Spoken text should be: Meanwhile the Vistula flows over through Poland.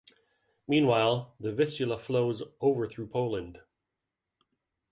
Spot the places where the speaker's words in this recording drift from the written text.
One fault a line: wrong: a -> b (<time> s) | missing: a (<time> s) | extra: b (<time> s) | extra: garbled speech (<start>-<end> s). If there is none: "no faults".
no faults